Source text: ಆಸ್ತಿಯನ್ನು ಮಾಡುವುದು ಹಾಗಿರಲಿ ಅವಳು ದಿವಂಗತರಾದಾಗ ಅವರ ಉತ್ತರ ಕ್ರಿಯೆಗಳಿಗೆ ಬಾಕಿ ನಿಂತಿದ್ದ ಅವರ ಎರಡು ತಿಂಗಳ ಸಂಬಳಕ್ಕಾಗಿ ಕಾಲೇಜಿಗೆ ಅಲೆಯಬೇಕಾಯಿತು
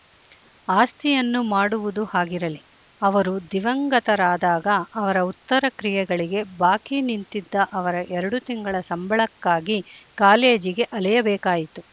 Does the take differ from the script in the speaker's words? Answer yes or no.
yes